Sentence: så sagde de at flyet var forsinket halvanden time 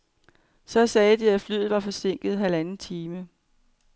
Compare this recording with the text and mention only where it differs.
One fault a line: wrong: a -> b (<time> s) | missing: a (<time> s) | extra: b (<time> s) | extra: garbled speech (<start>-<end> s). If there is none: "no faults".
no faults